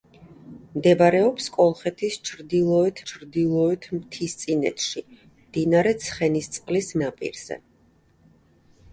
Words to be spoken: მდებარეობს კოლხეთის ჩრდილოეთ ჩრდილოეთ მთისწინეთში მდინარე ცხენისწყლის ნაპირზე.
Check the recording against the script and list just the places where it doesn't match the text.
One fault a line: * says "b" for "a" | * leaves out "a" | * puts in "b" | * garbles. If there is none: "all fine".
all fine